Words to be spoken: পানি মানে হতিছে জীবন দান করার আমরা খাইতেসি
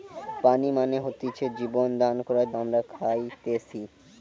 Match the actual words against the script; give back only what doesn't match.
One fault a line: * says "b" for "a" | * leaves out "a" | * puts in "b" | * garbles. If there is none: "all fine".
all fine